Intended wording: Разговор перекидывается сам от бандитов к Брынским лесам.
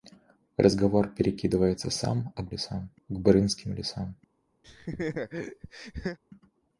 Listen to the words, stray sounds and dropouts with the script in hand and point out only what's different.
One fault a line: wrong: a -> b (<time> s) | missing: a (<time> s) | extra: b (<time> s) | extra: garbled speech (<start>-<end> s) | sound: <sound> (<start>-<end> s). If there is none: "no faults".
wrong: бандитов -> лесам (2.5 s)
sound: laugh (4.6-6.2 s)